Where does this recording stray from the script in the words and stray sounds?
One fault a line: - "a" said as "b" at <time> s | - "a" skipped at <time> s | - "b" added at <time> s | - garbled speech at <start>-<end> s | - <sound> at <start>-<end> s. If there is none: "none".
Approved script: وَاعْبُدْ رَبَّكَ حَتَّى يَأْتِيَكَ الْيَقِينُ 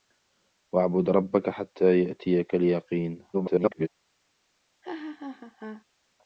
- garbled speech at 3.3-3.9 s
- laugh at 4.8-5.8 s